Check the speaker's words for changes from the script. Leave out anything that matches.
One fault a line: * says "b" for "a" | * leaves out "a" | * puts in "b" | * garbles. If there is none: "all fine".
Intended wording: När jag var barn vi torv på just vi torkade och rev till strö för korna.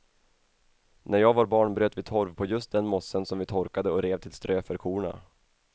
* puts in "bröt"
* puts in "den mossen som"